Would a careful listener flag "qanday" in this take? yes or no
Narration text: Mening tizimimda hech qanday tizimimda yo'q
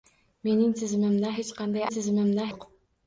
no